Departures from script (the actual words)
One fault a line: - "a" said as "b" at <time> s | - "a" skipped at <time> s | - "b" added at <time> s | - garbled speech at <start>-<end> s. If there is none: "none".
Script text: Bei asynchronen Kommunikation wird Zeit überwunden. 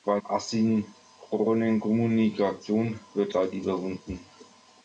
none